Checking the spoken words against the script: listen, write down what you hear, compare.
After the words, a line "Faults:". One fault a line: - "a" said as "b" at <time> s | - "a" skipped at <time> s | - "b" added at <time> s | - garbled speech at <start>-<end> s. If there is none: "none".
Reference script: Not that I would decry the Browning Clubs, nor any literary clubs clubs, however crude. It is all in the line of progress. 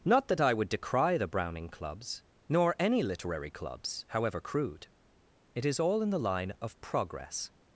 Not that I would decry the Browning Clubs, nor any literary clubs, however crude. It is all in the line of progress.
Faults:
- "clubs" skipped at 4.0 s